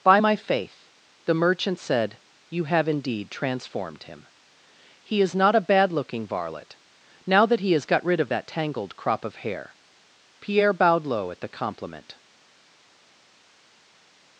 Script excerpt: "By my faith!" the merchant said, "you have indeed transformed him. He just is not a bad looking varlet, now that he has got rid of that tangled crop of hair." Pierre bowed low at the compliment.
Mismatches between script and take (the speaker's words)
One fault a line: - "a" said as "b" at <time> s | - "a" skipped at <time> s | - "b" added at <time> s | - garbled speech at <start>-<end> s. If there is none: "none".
- "just" skipped at 5.2 s